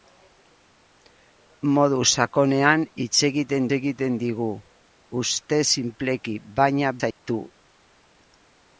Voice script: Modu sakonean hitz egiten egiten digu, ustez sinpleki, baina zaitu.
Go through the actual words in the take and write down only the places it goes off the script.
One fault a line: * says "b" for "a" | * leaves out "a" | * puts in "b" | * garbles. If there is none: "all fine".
all fine